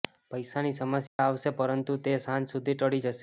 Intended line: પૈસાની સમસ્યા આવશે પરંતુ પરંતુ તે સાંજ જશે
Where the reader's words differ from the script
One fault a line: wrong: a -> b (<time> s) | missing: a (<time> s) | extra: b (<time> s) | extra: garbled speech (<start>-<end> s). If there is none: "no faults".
missing: પરંતુ (2.0 s)
extra: સુધી ટળી (2.5 s)